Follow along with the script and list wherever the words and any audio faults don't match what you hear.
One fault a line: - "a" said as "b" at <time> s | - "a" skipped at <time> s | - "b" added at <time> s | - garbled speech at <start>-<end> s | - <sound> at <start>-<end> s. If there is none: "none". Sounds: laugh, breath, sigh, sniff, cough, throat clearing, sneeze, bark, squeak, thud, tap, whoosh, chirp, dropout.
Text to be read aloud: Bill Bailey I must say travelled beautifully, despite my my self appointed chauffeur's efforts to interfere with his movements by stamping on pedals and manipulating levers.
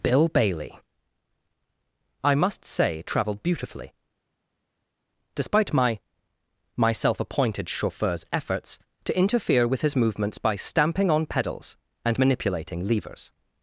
none